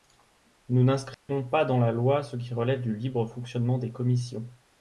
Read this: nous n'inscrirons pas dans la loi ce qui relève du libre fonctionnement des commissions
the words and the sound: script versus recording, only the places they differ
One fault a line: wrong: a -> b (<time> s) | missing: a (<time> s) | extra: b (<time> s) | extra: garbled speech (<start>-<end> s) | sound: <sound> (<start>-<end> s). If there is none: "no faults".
sound: dropout (1.1-1.3 s)